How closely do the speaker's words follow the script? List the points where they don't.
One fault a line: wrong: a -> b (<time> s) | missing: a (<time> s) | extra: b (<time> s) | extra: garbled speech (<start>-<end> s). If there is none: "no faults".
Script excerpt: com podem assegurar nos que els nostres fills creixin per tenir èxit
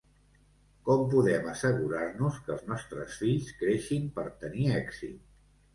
no faults